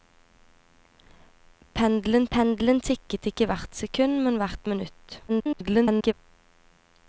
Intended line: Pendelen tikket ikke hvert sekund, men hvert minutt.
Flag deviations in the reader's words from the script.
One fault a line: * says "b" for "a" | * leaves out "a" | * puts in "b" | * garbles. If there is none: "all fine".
* puts in "pendelen"
* garbles